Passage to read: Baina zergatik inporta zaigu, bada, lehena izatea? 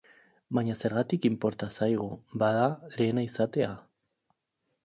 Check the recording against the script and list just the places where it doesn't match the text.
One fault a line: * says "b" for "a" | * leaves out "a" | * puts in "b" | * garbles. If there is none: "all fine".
all fine